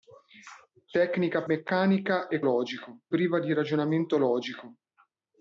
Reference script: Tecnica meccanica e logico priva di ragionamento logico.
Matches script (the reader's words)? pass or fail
pass